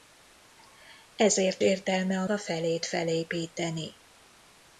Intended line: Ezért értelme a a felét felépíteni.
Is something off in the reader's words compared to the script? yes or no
no